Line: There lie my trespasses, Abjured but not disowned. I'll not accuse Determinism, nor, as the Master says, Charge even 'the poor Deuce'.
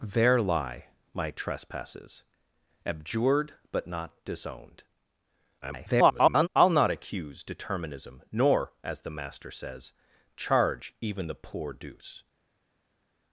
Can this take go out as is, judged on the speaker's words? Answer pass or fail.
fail